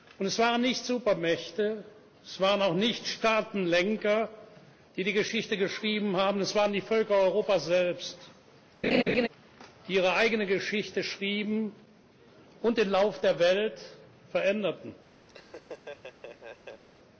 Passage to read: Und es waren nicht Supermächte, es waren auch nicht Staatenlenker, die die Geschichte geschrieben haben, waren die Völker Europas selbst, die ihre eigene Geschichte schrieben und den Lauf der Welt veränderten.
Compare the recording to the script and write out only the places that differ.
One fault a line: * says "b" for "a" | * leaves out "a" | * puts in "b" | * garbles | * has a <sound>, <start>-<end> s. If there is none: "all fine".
* puts in "es"
* has a laugh, 8.8-9.3 s
* has a laugh, 15.3-16.8 s